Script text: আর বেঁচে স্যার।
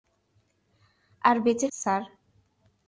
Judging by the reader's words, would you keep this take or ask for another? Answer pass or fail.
pass